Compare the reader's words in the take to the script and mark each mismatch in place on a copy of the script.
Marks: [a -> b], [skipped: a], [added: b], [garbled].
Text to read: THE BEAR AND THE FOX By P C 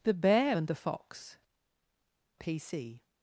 THE BEAR AND THE FOX [skipped: By] P C